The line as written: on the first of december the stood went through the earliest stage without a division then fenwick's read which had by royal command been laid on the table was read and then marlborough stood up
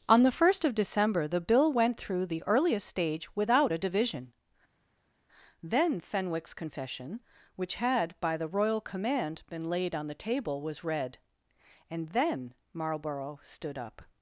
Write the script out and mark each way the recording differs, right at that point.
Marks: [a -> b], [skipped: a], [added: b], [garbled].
on the first of december the [stood -> bill] went through the earliest stage without a division then fenwick's [read -> confession] which had by [added: the] royal command been laid on the table was read and then marlborough stood up